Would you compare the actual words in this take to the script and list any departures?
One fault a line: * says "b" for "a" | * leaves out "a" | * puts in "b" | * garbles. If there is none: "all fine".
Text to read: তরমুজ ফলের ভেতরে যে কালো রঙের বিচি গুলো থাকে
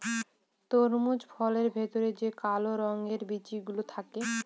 all fine